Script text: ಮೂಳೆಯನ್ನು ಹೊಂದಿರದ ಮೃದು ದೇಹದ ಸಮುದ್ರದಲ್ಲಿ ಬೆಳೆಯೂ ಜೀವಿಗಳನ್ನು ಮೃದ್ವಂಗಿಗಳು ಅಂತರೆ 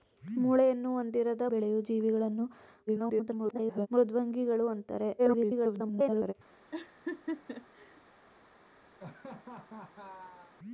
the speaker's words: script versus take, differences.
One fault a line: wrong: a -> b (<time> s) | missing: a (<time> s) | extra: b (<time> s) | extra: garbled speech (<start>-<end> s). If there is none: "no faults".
missing: ಮೃದು ದೇಹದ ಸಮುದ್ರದಲ್ಲಿ (1.4 s)
extra: garbled speech (2.9-3.9 s)
extra: garbled speech (5.2-6.3 s)